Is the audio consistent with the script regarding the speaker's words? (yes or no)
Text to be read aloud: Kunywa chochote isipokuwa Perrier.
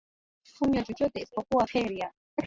yes